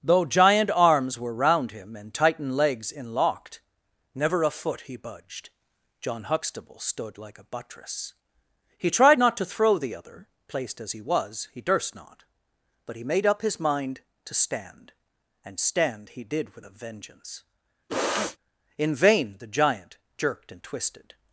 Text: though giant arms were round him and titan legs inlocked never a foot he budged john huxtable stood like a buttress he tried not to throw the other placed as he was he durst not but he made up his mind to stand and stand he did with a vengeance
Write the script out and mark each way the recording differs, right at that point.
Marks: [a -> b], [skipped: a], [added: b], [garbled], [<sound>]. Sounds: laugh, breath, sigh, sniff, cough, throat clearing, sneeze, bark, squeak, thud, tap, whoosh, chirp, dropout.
though giant arms were round him and titan legs inlocked never a foot he budged john huxtable stood like a buttress he tried not to throw the other placed as he was he durst not but he made up his mind to stand and stand he did with a vengeance [sniff] [added: in vain the giant jerked and twisted]